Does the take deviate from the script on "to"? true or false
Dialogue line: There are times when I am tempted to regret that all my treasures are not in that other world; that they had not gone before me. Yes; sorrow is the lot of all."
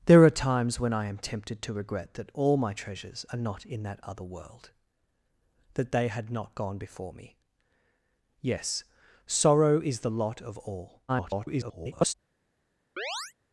false